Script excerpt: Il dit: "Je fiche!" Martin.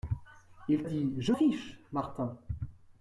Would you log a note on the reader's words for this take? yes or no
no